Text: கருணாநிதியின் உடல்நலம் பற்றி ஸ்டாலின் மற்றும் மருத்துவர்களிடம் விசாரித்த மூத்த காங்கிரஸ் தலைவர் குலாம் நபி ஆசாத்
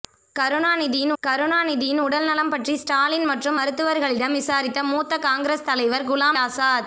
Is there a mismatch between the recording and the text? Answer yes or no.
yes